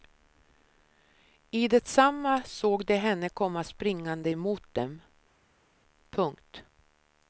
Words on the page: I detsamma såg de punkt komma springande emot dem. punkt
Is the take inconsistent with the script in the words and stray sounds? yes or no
yes